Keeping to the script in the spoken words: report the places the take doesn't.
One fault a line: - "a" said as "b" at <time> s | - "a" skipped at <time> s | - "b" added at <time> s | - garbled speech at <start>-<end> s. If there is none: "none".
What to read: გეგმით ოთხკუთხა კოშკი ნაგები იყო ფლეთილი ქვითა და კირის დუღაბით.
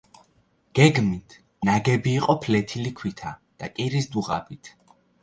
- "ოთხკუთხა კოშკი" skipped at 1.4 s